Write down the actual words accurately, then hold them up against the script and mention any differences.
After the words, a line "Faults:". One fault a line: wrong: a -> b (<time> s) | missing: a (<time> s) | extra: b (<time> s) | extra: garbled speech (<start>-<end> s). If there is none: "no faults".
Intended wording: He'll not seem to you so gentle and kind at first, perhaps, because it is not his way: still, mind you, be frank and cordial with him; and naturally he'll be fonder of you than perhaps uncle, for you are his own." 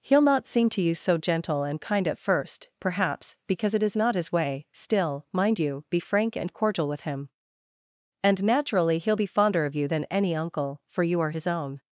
He'll not seem to you so gentle and kind at first, perhaps, because it is not his way: still, mind you, be frank and cordial with him; and naturally he'll be fonder of you than any uncle, for you are his own."
Faults:
wrong: perhaps -> any (10.0 s)